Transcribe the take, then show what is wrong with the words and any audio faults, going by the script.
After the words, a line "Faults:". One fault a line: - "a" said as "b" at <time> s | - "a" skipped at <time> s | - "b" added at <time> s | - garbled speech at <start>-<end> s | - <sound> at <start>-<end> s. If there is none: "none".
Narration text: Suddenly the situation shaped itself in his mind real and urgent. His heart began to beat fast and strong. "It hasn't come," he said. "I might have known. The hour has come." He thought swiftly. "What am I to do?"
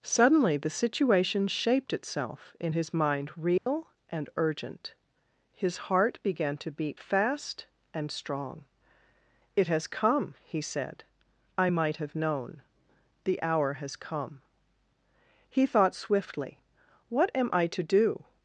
Suddenly the situation shaped itself in his mind real and urgent. His heart began to beat fast and strong. "It has come," he said. "I might have known. The hour has come." He thought swiftly. "What am I to do?"
Faults:
- dropout at 3.6-3.7 s
- "hasn't" said as "has" at 9.7 s